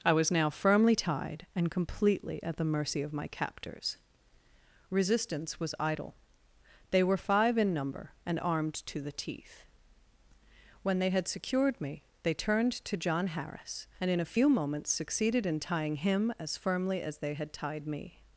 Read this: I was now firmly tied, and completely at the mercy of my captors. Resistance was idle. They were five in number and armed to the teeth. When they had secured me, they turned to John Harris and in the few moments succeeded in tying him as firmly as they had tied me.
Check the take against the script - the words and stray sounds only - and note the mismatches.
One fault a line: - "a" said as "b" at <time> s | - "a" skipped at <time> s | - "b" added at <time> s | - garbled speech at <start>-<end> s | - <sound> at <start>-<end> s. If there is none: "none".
- "the" said as "a" at 14.2 s